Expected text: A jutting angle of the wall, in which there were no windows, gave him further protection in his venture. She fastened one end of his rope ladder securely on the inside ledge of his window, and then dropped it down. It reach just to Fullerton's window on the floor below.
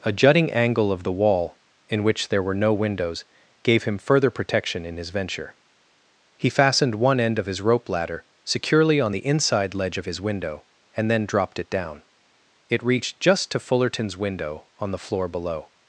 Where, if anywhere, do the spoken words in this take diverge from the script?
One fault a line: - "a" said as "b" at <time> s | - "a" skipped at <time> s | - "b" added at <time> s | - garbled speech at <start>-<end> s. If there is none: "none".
- "She" said as "He" at 6.4 s
- "reach" said as "reached" at 12.8 s